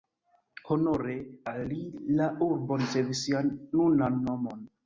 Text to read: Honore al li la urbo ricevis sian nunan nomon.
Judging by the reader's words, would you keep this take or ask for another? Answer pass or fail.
pass